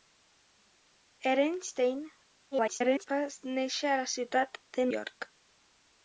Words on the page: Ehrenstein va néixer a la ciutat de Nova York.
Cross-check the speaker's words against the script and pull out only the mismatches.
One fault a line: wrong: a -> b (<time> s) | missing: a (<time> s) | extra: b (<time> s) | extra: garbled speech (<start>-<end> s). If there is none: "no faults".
extra: garbled speech (2.5-3.1 s)
missing: Nova (4.9 s)